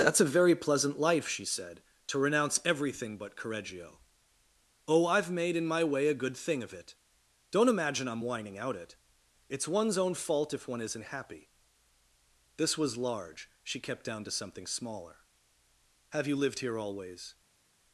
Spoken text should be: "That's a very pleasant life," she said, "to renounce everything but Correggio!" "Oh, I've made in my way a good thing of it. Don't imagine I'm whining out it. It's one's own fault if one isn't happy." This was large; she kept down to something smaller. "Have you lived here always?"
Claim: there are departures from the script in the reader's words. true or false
false